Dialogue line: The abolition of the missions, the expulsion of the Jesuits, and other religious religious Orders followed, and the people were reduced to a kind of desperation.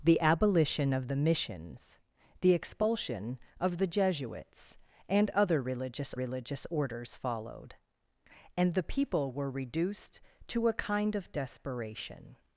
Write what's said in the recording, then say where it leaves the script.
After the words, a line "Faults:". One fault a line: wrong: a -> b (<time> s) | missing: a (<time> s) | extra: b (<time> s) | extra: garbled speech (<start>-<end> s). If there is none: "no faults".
The abolition of the missions, the expulsion of the Jesuits, and other religious religious Orders followed, and the people were reduced to a kind of desperation.
Faults:
no faults